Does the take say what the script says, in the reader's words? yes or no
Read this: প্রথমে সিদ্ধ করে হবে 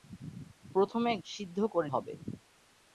yes